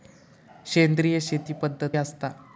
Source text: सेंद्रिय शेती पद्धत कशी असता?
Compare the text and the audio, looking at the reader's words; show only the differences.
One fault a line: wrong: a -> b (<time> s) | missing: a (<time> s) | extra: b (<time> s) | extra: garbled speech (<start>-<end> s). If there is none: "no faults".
missing: कशी (1.9 s)